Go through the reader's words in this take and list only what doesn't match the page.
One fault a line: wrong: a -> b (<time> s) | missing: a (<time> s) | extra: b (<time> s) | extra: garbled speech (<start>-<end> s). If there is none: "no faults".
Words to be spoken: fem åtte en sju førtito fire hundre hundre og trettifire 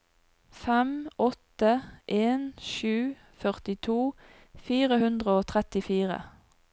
missing: hundre (5.4 s)